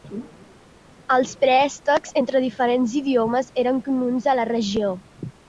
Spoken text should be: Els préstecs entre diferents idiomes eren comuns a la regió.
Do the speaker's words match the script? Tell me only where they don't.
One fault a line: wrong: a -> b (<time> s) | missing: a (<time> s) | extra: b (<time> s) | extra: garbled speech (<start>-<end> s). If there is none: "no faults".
no faults